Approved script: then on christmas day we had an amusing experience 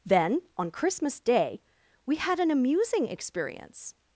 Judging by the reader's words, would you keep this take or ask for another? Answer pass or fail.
pass